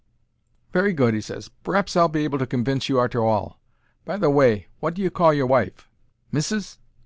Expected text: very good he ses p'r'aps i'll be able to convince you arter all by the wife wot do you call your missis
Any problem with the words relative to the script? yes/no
yes